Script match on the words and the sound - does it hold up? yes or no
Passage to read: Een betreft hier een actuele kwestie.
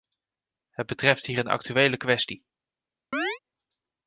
no